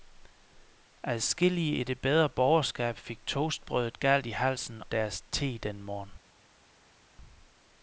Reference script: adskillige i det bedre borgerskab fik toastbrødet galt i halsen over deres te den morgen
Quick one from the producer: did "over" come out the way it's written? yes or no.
no